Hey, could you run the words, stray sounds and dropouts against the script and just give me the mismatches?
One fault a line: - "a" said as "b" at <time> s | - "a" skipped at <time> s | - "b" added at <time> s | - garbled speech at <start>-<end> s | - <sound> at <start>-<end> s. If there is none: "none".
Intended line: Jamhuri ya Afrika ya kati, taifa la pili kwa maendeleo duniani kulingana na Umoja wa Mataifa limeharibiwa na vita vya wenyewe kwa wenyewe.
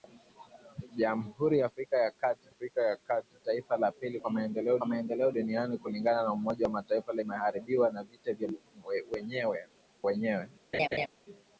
- "Afrika ya kati" added at 2.5 s
- "kwa maendeleo" added at 4.8 s
- "kwa" skipped at 9.7 s
- laugh at 10.7-11.1 s